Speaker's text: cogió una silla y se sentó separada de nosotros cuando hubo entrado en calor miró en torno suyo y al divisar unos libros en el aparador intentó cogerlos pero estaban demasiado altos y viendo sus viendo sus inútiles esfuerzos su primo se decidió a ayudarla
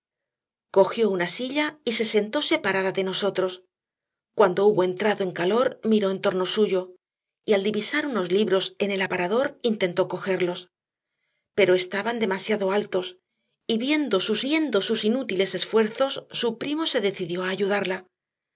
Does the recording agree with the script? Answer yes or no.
yes